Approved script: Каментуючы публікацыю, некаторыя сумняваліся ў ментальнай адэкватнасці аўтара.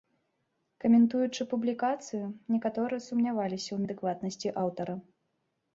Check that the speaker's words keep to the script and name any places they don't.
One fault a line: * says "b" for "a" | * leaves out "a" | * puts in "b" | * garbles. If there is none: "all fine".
* leaves out "ментальнай"